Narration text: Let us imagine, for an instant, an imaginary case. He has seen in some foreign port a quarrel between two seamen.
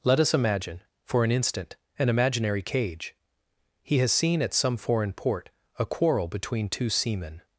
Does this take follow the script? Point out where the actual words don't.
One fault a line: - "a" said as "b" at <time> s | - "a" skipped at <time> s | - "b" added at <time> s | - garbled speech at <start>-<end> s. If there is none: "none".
- "case" said as "cage" at 2.6 s
- "in" said as "at" at 4.4 s